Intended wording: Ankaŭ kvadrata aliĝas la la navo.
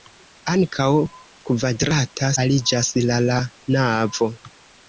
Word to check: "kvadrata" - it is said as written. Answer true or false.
true